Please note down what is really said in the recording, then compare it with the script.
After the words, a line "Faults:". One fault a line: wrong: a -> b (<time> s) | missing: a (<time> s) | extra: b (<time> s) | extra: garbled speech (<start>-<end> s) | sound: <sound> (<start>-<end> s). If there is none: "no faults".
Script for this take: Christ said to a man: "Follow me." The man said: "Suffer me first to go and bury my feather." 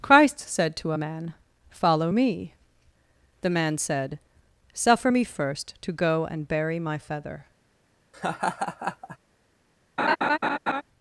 Christ said to a man: "Follow me." The man said: "Suffer me first to go and bury my feather."
Faults:
sound: laugh (8.1-9.2 s)
sound: laugh (10.0-10.8 s)